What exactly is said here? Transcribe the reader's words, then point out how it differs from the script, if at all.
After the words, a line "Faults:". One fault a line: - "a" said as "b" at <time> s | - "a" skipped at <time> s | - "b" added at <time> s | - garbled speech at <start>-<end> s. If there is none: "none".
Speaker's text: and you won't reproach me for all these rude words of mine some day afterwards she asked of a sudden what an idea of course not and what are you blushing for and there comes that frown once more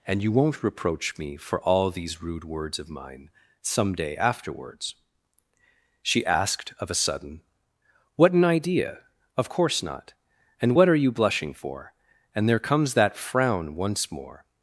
and you won't reproach me for all these rude words of mine some day afterwards she asked of a sudden what an idea of course not and what are you blushing for and there comes that frown once more
Faults:
none